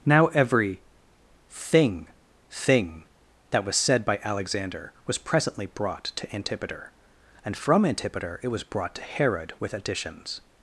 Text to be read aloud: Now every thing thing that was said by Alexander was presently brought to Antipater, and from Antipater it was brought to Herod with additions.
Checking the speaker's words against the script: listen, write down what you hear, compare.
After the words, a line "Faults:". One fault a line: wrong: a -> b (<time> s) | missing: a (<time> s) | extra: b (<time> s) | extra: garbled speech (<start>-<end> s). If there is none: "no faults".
Now every thing thing that was said by Alexander was presently brought to Antipater, and from Antipater it was brought to Herod with additions.
Faults:
no faults